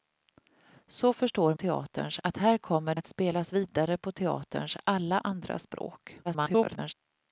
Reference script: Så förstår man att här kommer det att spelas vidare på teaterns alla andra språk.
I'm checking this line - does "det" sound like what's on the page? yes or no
no